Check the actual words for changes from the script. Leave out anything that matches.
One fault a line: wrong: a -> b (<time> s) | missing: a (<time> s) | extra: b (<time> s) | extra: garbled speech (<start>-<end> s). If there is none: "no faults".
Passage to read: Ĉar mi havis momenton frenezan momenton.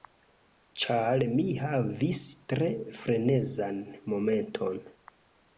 wrong: momenton -> tre (2.5 s)